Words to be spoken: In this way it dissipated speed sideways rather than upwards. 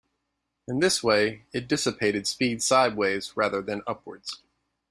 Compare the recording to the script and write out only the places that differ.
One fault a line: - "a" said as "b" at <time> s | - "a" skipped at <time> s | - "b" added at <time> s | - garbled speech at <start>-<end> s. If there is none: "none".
none